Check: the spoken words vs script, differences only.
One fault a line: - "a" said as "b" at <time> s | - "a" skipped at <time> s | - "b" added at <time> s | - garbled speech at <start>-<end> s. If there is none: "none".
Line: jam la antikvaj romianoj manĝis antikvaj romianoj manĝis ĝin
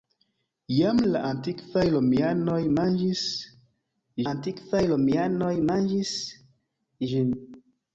none